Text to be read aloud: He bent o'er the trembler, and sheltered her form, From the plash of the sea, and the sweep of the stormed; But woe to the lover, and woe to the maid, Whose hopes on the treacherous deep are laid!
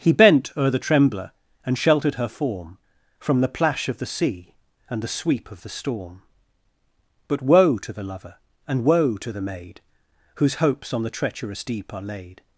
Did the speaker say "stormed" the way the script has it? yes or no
no